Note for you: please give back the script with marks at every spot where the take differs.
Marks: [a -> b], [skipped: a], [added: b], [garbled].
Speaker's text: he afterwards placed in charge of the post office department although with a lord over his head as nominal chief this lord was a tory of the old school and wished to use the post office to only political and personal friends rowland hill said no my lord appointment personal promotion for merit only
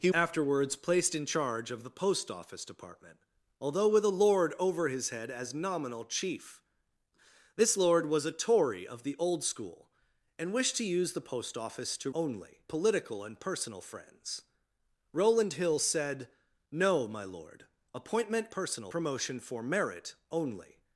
he afterwards placed in charge of the post office department although with a lord over his head as nominal chief this lord was a tory of the old school and wished to use the post office to only political and personal friends rowland hill said no my lord appointment personal promotion for merit only